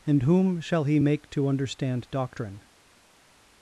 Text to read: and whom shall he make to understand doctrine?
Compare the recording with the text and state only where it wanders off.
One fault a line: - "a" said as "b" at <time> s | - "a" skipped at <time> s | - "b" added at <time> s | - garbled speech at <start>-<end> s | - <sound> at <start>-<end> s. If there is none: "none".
none